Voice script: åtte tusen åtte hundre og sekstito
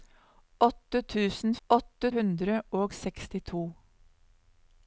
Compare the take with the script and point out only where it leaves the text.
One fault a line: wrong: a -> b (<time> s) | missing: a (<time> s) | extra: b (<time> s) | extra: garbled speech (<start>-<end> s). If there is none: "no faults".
no faults